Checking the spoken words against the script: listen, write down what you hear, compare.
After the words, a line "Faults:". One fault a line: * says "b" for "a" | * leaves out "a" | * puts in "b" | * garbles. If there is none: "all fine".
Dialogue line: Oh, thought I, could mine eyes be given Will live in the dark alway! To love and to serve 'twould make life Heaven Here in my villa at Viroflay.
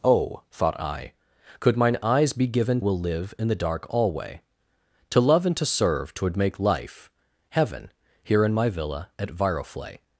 Oh, thought I, could mine eyes be given Will live in the dark alway! To love and to serve 'twould make life Heaven Here in my villa at Viroflay.
Faults:
all fine